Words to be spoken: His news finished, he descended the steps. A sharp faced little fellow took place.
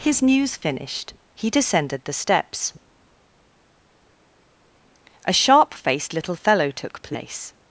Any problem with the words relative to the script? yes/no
no